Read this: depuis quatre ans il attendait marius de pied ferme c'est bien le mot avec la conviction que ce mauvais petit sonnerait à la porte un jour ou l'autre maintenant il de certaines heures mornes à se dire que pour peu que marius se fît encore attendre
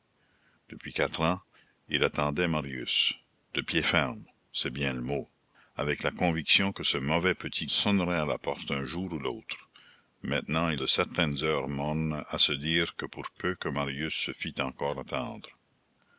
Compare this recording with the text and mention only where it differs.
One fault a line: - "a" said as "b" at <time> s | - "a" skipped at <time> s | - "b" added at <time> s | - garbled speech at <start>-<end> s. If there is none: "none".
none